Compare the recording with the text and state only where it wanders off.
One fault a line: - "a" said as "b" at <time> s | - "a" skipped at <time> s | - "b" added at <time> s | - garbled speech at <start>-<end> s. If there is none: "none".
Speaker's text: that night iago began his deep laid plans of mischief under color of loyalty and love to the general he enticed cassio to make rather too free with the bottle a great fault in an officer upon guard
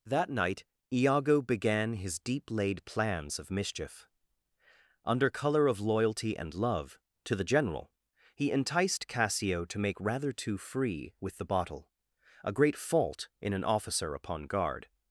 none